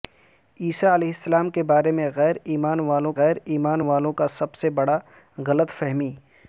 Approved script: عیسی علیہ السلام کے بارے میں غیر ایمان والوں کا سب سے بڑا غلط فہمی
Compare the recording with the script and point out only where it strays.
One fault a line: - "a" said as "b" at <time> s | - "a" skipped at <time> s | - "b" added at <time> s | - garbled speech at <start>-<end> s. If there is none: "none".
- "غیر ایمان والوں" added at 3.2 s